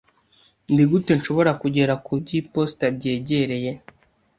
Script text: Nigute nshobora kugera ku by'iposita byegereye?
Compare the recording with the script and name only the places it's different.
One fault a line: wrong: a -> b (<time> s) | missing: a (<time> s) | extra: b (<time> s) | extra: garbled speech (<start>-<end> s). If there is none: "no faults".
no faults